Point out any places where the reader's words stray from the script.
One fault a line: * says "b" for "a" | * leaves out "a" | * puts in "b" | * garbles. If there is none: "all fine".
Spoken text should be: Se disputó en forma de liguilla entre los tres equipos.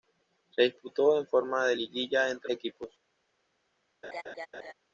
* leaves out "los tres"